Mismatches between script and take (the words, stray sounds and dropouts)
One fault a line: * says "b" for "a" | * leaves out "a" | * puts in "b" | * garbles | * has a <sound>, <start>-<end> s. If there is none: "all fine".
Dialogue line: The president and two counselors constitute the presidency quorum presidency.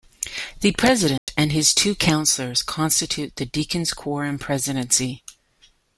* has a dropout, 1.2-1.3 s
* puts in "his"
* says "deacons" for "presidency"